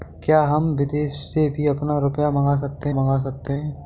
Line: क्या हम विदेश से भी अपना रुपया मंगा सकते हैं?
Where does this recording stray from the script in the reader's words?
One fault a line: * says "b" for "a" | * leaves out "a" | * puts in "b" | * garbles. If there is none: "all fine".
* puts in "मंगा सकते"